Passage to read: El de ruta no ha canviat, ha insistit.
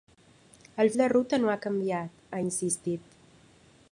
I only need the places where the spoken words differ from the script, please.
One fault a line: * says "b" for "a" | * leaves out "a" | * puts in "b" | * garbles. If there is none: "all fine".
all fine